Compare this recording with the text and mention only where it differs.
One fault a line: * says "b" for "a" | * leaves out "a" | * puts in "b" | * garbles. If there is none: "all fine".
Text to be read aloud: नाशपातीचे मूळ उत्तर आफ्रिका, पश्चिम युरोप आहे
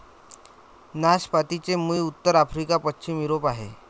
all fine